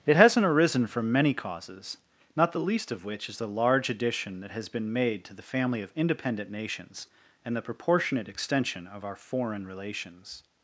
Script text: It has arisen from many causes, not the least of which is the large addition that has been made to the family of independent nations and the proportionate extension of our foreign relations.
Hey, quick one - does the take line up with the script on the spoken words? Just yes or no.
no